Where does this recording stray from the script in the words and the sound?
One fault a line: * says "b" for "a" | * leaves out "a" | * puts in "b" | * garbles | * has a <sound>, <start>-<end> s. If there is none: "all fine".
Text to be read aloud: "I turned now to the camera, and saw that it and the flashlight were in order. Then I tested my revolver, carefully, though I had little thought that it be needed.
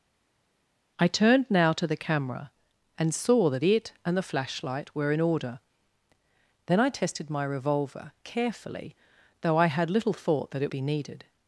all fine